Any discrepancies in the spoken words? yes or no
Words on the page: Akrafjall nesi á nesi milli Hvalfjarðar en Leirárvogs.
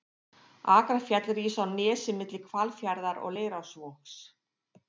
yes